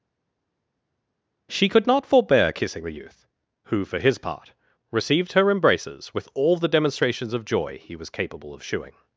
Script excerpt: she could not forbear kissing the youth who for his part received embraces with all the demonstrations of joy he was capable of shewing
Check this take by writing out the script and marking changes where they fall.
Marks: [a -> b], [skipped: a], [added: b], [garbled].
she could not forbear kissing the youth who for his part received [added: her] embraces with all the demonstrations of joy he was capable of shewing